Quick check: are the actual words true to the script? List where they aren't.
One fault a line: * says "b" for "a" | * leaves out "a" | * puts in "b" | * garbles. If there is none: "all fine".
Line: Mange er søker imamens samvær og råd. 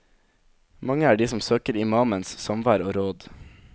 * puts in "de som"